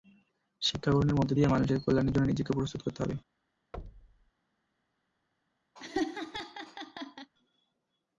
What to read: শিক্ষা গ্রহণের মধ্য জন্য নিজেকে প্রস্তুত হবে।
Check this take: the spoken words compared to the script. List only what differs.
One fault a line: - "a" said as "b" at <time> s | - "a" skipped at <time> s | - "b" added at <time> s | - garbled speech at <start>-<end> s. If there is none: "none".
- "দিয়ে মানুষের কল্যাণের" added at 1.3 s
- "করতে" added at 2.8 s